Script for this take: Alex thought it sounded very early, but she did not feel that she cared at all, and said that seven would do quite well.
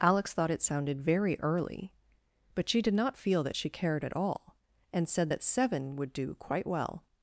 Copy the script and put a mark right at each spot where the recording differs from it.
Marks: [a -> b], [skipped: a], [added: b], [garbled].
Alex thought it sounded very early, but she did not feel that she cared at all, and said that seven would do quite well.